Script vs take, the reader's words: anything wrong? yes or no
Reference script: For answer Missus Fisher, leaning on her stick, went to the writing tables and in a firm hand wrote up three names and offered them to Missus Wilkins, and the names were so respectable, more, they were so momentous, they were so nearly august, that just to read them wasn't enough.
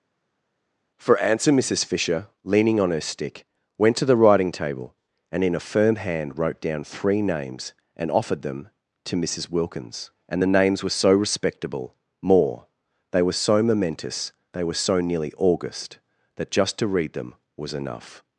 yes